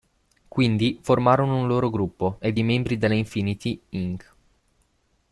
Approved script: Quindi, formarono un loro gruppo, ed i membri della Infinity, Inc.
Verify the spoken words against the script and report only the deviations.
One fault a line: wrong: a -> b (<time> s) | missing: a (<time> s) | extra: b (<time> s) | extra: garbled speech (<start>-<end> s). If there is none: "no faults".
no faults